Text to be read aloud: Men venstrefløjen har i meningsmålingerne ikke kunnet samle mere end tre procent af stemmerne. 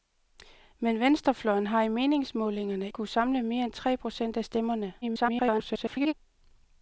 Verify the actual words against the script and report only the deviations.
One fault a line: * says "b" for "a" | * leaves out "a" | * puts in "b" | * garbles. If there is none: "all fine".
* leaves out "ikke"
* garbles